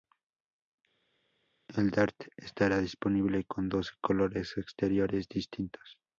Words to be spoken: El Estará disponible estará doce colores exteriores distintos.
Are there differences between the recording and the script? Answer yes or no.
yes